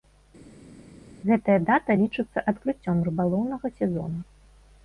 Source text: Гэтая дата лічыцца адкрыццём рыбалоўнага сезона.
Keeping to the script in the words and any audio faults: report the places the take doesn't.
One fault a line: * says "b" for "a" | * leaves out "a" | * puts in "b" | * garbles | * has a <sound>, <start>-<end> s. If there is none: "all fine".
all fine